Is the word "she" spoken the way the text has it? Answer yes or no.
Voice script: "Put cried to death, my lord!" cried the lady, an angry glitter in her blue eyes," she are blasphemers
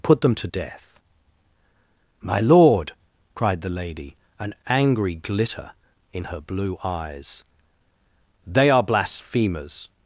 no